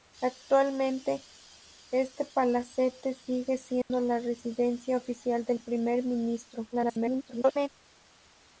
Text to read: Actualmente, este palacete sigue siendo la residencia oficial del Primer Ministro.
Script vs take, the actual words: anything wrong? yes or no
yes